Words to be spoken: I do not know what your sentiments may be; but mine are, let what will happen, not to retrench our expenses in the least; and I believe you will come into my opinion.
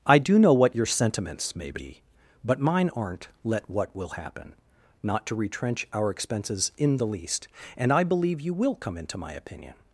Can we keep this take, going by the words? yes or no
no